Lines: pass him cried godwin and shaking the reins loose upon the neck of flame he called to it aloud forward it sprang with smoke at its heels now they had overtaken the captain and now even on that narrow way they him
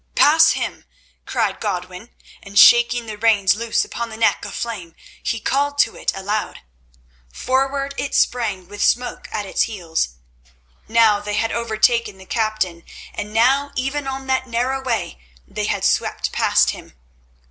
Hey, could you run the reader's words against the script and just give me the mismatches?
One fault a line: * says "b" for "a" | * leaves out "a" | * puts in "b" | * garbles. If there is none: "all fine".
* puts in "had swept past"